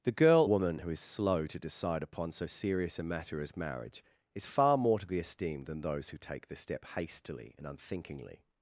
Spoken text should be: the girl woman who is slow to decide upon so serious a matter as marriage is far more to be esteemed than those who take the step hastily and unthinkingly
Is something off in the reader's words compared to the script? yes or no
no